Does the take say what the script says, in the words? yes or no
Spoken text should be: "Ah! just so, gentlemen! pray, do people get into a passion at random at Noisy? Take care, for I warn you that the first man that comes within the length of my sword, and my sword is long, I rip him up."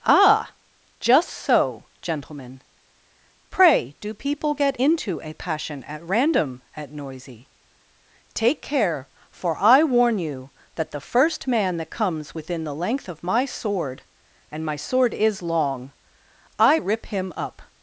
yes